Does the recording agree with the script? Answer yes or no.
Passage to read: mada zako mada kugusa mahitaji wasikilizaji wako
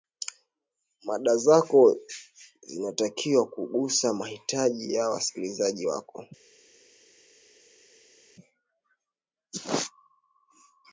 no